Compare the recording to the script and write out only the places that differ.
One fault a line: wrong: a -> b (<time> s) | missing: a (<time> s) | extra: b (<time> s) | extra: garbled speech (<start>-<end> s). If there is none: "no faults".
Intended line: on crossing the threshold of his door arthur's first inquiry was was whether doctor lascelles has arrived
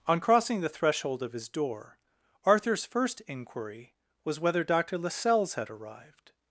missing: was (4.4 s)
wrong: has -> had (5.5 s)